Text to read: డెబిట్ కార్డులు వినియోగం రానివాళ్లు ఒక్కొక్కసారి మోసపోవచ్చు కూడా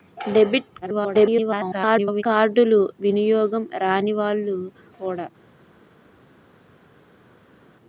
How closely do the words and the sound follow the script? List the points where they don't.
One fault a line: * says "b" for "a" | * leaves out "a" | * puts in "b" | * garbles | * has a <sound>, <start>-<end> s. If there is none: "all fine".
* garbles
* leaves out "ఒక్కొక్కసారి మోసపోవచ్చు"